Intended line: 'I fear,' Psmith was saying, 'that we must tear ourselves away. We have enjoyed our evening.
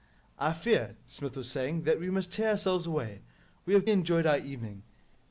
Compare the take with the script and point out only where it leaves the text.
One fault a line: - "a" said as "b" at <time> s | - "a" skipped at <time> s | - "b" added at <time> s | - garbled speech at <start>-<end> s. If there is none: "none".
none